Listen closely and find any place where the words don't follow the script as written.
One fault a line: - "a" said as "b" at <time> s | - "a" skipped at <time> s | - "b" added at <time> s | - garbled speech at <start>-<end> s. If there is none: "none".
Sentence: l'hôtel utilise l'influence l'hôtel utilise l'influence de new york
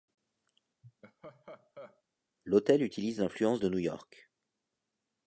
- "l'hôtel utilise l'influence" skipped at 3.6 s